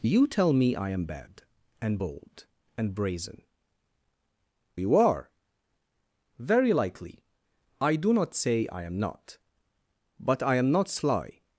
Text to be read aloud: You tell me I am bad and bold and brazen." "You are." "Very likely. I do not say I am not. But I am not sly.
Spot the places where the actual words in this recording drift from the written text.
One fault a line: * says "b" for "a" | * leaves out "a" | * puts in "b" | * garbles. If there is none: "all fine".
all fine